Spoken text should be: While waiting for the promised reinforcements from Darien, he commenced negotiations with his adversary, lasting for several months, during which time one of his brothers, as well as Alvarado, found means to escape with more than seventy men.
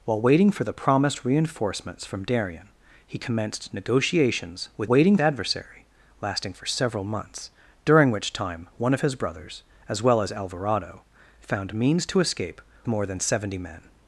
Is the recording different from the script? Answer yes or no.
yes